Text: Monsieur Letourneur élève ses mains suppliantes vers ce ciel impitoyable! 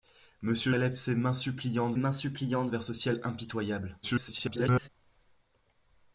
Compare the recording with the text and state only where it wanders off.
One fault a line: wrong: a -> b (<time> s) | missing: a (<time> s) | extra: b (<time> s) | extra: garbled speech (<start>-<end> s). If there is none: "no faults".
missing: Letourneur (0.7 s)
extra: mains suppliantes (1.9 s)
extra: garbled speech (4.0-4.9 s)